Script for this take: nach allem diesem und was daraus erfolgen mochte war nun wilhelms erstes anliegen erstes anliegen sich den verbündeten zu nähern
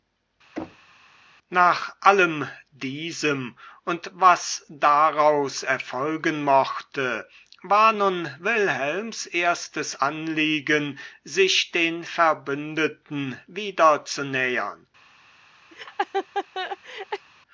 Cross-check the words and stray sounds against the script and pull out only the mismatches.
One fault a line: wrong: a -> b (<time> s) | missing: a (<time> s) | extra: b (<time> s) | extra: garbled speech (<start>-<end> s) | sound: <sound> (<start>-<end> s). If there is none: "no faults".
sound: thud (0.6-0.9 s)
missing: erstes anliegen (11.0 s)
extra: wieder (13.5 s)
sound: laugh (15.7-17.3 s)